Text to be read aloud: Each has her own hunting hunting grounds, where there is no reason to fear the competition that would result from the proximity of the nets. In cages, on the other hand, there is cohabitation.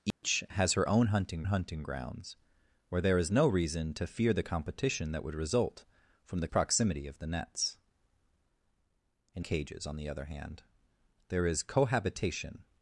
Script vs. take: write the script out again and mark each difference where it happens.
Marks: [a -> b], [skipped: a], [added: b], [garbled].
Each has her own hunting hunting grounds, where there is no reason to fear the competition that would result from the proximity of the nets. In cages, on the other hand, there is cohabitation.